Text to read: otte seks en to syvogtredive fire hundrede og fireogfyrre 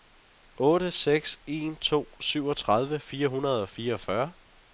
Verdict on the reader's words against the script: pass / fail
pass